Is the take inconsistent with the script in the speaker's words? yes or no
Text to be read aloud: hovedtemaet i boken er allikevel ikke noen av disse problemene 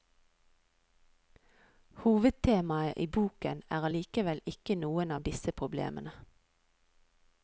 no